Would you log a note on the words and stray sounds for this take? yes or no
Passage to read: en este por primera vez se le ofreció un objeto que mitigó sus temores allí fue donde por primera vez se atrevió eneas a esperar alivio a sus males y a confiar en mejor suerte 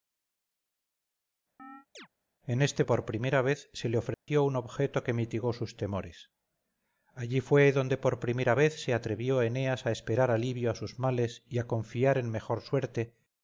yes